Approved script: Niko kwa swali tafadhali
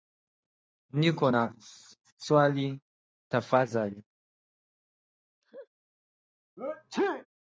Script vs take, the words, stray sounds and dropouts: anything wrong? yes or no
yes